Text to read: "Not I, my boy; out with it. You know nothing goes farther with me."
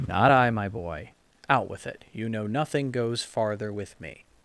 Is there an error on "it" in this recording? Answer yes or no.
no